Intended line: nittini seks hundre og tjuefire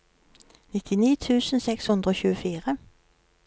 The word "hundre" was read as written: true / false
true